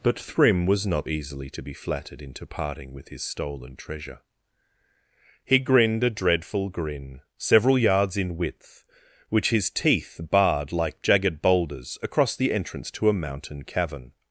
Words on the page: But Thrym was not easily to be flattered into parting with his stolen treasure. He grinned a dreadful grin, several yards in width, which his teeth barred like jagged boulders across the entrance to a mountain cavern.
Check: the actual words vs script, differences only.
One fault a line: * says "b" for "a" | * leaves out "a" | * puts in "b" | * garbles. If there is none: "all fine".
all fine